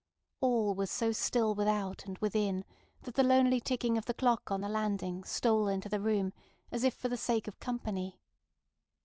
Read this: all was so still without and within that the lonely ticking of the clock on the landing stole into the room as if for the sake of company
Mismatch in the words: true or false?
false